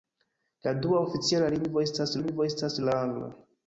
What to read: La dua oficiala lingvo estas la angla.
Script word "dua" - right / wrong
right